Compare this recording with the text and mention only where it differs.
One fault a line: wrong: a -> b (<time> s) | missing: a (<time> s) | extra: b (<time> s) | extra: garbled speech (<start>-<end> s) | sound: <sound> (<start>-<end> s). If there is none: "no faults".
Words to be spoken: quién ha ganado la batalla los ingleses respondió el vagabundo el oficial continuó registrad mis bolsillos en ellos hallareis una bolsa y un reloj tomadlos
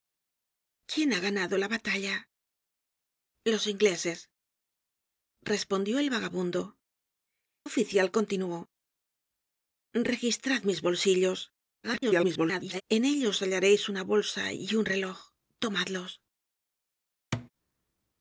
missing: el (6.6 s)
extra: garbled speech (11.8-12.8 s)
sound: thud (17.3-17.5 s)